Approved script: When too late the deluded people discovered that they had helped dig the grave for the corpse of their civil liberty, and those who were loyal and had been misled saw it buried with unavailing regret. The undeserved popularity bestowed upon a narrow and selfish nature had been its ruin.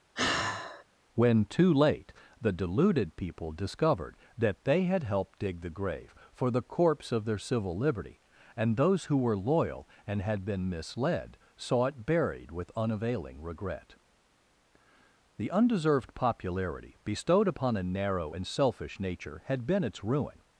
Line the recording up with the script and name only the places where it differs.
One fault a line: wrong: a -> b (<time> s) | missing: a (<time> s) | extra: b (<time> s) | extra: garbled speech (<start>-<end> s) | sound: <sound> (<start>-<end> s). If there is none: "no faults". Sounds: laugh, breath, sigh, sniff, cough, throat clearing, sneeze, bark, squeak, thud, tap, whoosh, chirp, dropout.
sound: sigh (0.1-0.8 s)